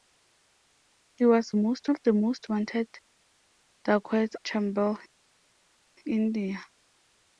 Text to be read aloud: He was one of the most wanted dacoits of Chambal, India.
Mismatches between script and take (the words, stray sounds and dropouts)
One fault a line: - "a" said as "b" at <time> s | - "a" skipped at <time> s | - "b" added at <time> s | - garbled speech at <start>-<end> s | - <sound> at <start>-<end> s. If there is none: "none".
- "one" said as "most" at 1.5 s
- "of" skipped at 4.4 s